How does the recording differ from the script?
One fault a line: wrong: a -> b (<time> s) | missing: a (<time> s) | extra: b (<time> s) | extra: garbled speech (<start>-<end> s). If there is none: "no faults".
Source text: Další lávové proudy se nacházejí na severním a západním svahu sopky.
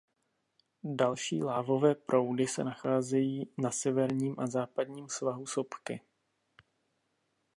no faults